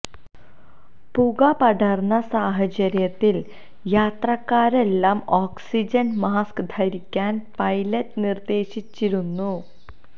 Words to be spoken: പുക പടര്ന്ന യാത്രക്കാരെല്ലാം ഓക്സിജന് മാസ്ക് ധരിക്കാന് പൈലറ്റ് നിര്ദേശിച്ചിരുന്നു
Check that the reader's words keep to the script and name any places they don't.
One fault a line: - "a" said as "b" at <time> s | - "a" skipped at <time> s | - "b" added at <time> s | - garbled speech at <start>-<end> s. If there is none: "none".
- "സാഹചര്യത്തില്" added at 2.3 s